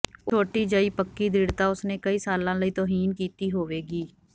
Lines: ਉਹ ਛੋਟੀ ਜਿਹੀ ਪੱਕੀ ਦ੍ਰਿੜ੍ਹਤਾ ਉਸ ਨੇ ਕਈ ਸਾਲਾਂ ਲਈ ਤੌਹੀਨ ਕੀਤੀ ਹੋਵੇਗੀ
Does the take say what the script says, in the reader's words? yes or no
yes